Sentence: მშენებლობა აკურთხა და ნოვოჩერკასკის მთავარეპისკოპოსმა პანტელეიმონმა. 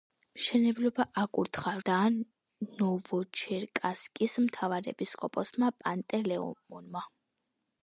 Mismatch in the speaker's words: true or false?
false